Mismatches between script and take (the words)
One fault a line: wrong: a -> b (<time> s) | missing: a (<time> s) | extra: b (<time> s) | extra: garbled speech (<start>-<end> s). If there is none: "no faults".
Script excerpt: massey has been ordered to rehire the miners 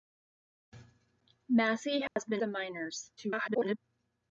missing: ordered to rehire (2.4 s)
extra: garbled speech (3.2-3.8 s)